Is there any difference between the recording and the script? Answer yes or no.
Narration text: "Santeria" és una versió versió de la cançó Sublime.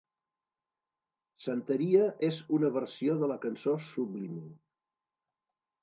yes